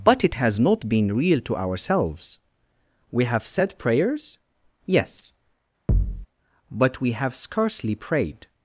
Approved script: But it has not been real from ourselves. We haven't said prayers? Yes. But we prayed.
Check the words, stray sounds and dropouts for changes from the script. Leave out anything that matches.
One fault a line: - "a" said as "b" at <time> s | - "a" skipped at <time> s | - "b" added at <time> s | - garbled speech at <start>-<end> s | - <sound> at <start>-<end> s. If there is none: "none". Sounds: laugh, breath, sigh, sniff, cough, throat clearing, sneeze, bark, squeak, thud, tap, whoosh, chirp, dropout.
- "from" said as "to" at 1.4 s
- "haven't" said as "have" at 3.2 s
- thud at 5.9-6.3 s
- "have scarcely" added at 7.1 s